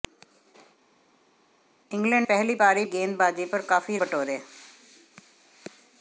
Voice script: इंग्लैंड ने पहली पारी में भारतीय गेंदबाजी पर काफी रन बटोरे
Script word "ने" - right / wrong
wrong